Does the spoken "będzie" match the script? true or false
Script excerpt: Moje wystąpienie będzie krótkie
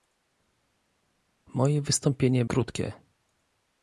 false